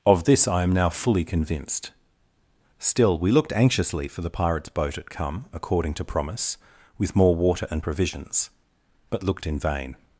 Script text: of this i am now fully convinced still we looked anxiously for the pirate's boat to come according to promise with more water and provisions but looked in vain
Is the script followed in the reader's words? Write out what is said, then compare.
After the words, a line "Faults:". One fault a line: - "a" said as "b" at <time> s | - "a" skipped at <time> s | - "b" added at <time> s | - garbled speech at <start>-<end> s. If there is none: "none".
of this i am now fully convinced still we looked anxiously for the pirate's boat at come according to promise with more water and provisions but looked in vain
Faults:
- "to" said as "at" at 5.0 s